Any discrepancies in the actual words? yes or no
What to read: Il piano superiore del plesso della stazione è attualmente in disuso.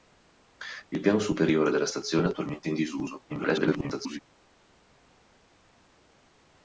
yes